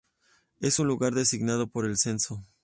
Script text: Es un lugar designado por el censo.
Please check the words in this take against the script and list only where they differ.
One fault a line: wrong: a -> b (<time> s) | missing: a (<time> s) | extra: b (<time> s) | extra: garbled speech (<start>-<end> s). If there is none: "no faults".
no faults